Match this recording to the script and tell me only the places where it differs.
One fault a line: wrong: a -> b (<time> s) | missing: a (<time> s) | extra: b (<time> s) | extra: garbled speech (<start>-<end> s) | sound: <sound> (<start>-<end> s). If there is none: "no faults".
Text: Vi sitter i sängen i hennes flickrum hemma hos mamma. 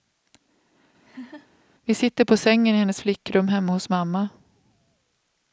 sound: laugh (1.0-1.5 s)
wrong: i -> på (2.2 s)